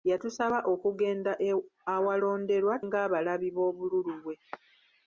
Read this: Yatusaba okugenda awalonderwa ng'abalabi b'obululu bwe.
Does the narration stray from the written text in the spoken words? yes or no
no